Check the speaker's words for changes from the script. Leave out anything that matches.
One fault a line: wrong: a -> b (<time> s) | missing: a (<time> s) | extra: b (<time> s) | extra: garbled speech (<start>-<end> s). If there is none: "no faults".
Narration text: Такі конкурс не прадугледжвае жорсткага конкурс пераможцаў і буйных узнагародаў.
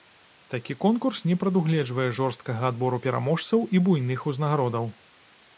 wrong: конкурс -> адбору (2.7 s)